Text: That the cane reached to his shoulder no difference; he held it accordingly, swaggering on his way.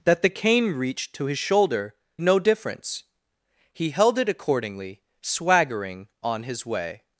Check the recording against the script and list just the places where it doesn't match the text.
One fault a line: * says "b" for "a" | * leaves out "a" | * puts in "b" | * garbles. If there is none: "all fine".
all fine